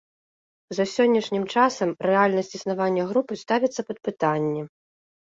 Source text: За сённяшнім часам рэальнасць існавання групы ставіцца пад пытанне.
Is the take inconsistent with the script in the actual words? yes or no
no